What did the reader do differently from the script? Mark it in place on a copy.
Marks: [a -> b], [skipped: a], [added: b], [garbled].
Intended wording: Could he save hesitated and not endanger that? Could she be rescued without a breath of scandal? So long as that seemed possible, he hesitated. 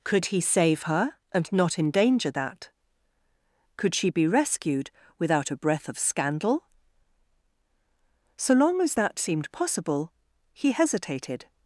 Could he save [hesitated -> her] and not endanger that? Could she be rescued without a breath of scandal? So long as that seemed possible, he hesitated.